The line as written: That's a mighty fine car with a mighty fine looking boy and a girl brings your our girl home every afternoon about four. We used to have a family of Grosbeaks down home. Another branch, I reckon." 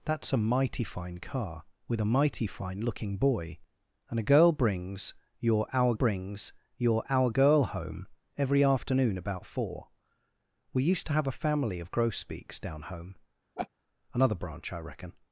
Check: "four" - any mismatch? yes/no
no